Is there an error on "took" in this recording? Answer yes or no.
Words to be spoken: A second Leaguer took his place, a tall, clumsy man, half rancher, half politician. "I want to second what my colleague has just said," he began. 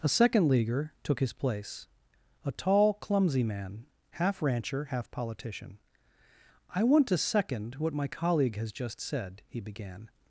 no